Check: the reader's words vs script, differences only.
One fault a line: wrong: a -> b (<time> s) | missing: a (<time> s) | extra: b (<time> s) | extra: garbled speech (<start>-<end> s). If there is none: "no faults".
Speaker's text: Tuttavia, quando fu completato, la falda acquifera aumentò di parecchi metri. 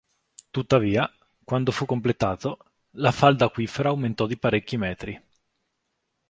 no faults